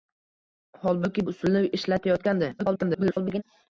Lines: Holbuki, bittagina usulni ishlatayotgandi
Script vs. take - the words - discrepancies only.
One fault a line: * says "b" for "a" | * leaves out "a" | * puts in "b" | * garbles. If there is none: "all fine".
* leaves out "bittagina"
* garbles